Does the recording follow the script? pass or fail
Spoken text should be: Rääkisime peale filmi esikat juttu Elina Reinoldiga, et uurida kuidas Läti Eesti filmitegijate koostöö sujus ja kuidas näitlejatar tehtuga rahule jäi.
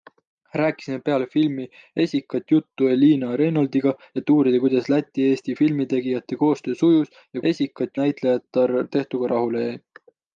fail